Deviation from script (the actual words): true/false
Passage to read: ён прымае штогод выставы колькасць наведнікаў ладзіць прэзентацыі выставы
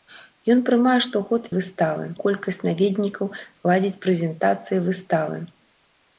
false